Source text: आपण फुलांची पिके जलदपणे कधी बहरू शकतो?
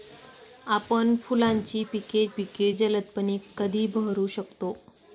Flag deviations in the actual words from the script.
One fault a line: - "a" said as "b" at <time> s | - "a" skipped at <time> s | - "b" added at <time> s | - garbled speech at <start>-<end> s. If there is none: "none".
- "पिके" added at 2.3 s